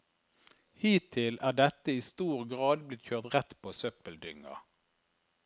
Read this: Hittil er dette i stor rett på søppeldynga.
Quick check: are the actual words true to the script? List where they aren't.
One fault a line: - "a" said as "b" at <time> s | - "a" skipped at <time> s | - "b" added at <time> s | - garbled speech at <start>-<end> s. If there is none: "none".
- "grad blitt kjørt" added at 2.5 s